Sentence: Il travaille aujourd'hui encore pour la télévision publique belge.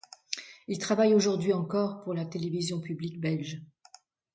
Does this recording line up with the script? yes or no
yes